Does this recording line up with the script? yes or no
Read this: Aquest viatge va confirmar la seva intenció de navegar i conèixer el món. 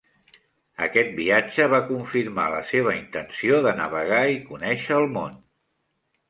yes